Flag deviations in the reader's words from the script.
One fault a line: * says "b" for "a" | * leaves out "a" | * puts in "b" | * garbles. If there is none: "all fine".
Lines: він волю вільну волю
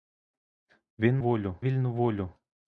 all fine